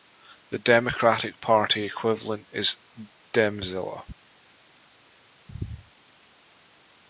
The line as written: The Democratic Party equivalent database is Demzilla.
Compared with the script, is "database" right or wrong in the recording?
wrong